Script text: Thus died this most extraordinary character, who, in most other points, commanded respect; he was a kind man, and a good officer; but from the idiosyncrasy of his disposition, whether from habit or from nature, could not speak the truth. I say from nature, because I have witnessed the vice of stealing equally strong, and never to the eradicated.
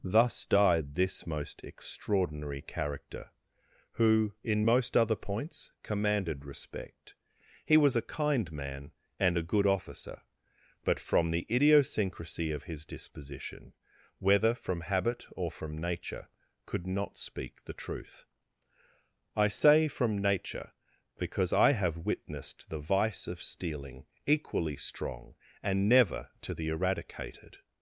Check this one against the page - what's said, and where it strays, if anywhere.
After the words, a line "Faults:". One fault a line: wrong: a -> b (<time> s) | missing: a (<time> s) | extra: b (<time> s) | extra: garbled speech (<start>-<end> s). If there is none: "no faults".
Thus died this most extraordinary character, who, in most other points, commanded respect; he was a kind man, and a good officer; but from the idiosyncrasy of his disposition, whether from habit or from nature, could not speak the truth. I say from nature, because I have witnessed the vice of stealing equally strong, and never to the eradicated.
Faults:
no faults